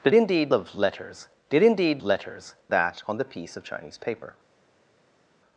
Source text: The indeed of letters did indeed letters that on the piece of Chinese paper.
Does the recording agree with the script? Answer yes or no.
yes